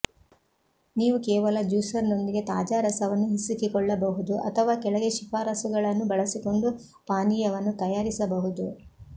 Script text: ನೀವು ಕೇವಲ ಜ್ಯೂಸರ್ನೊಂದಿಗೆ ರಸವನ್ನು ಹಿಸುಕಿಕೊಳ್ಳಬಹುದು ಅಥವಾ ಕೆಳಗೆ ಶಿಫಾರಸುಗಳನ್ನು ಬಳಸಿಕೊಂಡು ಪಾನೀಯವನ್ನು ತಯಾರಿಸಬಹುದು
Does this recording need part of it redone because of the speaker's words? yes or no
yes